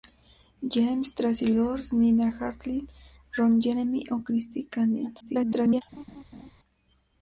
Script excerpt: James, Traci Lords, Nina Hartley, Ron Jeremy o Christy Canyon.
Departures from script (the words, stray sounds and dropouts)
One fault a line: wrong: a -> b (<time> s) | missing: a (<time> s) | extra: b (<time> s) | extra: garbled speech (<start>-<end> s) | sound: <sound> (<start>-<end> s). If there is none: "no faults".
extra: garbled speech (5.2-5.8 s)
sound: laugh (5.9-6.5 s)